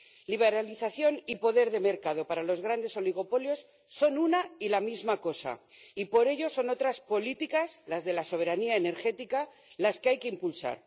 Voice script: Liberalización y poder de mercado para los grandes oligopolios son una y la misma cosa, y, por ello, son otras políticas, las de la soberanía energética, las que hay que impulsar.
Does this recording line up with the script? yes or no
yes